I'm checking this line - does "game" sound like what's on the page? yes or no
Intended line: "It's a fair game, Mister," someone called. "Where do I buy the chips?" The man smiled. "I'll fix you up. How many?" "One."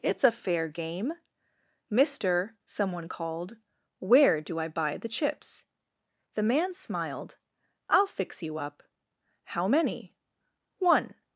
yes